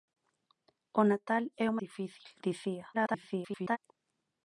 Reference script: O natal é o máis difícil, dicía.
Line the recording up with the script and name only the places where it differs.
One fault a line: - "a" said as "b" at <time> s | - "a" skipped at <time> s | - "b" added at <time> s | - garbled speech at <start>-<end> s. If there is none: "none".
- "máis" skipped at 1.8 s
- garbled speech at 2.9-3.8 s